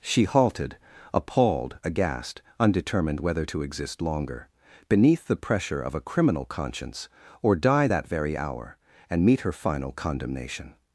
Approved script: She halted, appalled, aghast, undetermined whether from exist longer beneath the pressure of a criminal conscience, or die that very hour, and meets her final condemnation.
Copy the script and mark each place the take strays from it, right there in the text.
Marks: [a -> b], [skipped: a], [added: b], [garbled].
She halted, appalled, aghast, undetermined whether [from -> to] exist longer beneath the pressure of a criminal conscience, or die that very hour, and [meets -> meet] her final condemnation.